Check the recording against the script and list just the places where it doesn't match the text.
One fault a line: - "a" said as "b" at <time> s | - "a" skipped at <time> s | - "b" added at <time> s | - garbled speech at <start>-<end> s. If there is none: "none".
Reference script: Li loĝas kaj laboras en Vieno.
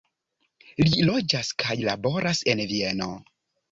none